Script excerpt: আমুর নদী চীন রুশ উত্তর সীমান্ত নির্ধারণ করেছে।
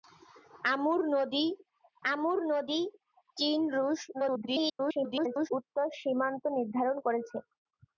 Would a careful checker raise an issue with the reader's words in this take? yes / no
yes